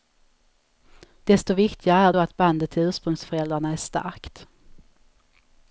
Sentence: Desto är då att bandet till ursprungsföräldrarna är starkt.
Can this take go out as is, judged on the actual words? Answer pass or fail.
fail